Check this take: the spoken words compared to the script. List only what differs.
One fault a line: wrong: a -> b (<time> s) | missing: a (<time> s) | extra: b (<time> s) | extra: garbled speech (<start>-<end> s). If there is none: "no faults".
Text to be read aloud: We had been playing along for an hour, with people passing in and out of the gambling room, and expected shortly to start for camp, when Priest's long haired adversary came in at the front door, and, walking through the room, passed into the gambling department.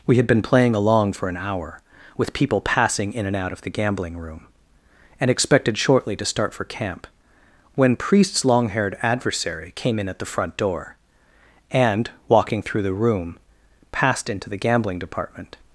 no faults